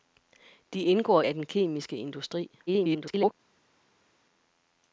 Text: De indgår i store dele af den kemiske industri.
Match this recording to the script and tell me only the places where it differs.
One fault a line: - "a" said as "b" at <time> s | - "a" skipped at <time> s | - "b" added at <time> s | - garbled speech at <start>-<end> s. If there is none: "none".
- "i store dele" skipped at 1.2 s
- garbled speech at 2.7-3.3 s